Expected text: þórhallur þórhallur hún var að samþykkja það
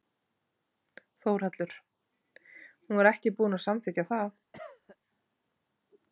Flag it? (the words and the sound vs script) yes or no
yes